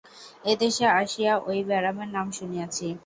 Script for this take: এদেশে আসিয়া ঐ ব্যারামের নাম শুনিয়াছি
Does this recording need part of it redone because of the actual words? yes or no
no